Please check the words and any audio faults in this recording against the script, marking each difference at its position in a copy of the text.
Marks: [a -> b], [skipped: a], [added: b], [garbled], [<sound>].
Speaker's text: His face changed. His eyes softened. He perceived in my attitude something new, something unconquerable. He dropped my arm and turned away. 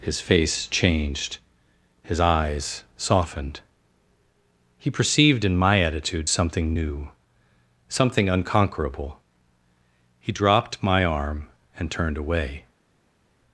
His face changed. His eyes softened. He perceived in my attitude something new, something unconquerable. He dropped my arm and turned away.